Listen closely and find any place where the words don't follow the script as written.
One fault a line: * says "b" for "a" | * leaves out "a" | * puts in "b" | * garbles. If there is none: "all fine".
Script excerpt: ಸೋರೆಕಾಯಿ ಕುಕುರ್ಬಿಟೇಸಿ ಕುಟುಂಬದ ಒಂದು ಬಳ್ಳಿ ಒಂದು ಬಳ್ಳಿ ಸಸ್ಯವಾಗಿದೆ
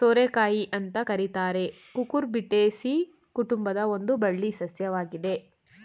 * puts in "ಅಂತ ಕರೀತಾರೆ"
* leaves out "ಒಂದು ಬಳ್ಳಿ"